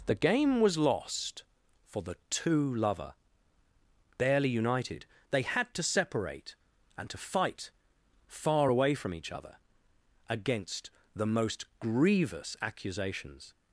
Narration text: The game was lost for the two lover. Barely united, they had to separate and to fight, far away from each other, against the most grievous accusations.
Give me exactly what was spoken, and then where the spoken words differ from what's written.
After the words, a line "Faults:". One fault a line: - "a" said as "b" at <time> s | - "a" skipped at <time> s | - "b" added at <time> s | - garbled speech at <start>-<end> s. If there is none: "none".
The game was lost for the two lover. Barely united, they had to separate and to fight, far away from each other, against the most grievous accusations.
Faults:
none